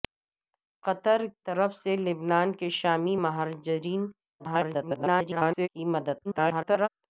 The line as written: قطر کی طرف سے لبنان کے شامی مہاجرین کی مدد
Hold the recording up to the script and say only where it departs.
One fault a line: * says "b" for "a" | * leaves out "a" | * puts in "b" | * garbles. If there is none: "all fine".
* leaves out "کی"
* garbles
* garbles